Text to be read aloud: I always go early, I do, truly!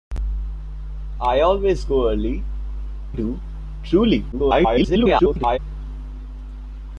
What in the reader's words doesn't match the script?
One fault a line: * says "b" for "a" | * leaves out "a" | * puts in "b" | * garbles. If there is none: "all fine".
* leaves out "I"
* garbles